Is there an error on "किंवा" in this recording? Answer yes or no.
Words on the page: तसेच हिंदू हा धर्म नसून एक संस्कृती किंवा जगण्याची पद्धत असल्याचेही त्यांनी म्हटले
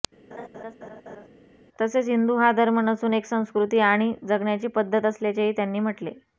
yes